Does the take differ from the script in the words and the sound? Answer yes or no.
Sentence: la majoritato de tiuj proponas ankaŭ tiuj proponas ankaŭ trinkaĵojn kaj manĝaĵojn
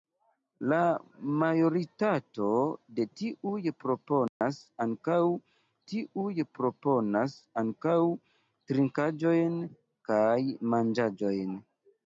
yes